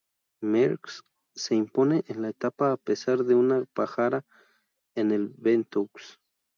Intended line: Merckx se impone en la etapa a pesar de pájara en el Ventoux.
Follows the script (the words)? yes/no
no